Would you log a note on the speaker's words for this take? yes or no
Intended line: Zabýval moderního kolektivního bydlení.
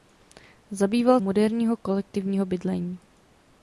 no